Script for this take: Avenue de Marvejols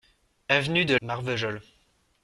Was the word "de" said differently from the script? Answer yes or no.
no